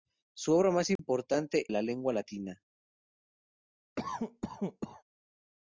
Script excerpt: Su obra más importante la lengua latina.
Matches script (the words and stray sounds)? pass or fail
fail